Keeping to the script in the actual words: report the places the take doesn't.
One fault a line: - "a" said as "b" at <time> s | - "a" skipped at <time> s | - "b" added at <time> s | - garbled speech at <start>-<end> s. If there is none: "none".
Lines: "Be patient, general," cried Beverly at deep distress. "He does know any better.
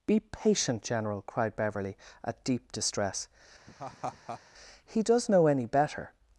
none